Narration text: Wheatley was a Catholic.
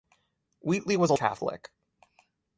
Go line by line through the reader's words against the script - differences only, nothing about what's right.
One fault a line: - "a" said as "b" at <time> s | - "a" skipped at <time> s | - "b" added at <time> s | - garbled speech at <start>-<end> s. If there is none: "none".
none